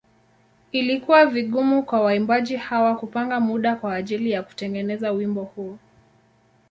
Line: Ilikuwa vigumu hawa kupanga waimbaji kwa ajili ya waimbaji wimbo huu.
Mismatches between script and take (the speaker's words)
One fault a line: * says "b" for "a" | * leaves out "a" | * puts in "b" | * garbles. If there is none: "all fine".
* puts in "kwa waimbaji"
* says "muda" for "waimbaji"
* says "kutengeneza" for "waimbaji"